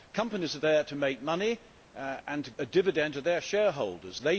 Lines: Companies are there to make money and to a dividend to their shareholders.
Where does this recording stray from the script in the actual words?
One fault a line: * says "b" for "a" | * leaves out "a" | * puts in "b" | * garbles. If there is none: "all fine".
all fine